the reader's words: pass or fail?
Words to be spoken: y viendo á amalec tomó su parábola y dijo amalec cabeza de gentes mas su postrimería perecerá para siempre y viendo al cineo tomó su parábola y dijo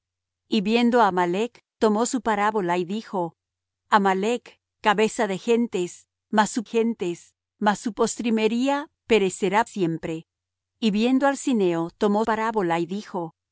fail